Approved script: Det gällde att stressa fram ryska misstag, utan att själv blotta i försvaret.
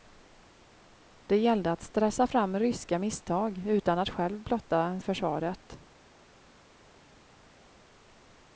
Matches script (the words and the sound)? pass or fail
pass